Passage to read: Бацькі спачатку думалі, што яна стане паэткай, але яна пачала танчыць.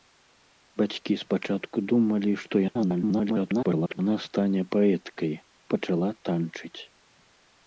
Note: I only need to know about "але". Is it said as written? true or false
false